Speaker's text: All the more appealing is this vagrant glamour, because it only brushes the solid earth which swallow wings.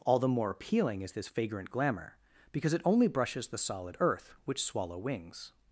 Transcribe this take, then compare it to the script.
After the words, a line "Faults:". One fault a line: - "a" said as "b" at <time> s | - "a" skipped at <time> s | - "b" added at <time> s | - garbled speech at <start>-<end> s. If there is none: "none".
All the more appealing is this vagrant glamour, because it only brushes the solid earth which swallow wings.
Faults:
none